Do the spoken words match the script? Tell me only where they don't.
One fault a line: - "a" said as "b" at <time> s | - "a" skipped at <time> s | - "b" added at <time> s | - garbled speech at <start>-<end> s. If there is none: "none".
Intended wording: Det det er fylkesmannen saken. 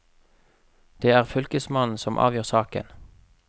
- "det" skipped at 1.1 s
- "som avgjør" added at 2.0 s